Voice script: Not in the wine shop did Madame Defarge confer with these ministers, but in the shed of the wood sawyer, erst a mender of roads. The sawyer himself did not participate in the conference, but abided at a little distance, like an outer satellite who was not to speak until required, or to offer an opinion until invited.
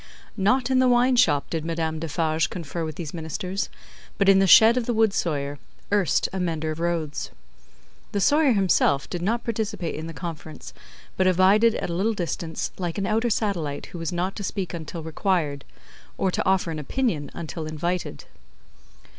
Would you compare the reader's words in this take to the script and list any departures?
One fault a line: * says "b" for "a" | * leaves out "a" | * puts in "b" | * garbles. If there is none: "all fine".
all fine